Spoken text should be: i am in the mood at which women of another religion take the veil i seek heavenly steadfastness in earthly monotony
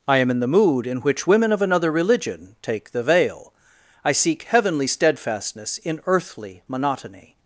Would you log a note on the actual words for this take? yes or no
yes